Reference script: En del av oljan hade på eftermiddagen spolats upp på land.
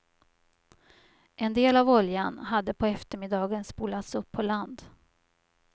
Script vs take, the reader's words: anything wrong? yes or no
no